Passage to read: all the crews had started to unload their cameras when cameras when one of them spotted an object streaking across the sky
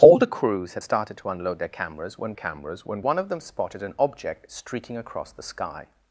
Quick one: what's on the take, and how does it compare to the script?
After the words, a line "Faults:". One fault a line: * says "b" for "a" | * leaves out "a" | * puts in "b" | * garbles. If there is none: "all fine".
all the crews had started to unload their cameras when cameras when one of them spotted an object streaking across the sky
Faults:
all fine